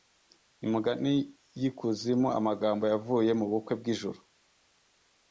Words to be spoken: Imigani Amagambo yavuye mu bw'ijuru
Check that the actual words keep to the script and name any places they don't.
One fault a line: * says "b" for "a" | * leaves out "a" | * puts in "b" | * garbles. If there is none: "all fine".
* puts in "y'Ikuzimu"
* puts in "bukwe"